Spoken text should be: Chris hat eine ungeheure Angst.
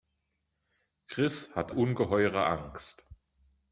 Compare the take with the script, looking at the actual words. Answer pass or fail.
fail